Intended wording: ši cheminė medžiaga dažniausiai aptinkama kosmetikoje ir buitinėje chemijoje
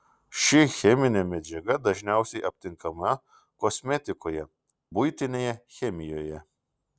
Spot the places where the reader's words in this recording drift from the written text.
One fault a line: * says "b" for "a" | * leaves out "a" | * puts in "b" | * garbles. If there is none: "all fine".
* leaves out "ir"